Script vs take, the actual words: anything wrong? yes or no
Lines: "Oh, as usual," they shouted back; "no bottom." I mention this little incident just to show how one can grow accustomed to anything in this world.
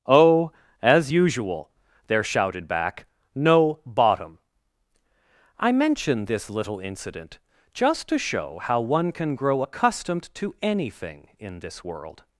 yes